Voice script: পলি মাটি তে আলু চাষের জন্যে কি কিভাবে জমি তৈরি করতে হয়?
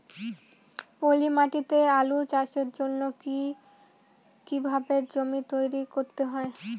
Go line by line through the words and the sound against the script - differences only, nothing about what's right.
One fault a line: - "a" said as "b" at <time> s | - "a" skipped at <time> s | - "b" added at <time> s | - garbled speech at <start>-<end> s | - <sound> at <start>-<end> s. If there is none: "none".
none